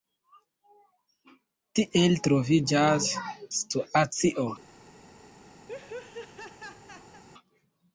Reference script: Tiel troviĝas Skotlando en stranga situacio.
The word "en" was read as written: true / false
false